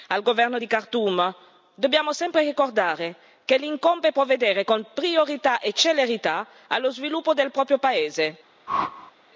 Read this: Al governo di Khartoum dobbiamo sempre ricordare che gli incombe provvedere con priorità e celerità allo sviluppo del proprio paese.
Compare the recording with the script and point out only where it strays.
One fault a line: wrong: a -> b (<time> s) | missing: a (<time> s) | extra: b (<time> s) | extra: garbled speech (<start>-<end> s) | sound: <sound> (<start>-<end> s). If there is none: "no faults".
sound: whoosh (8.7-9.1 s)